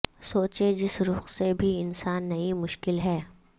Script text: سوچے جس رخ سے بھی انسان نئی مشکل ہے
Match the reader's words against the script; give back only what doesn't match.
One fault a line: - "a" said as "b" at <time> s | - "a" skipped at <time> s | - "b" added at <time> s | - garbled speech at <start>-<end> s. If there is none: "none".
none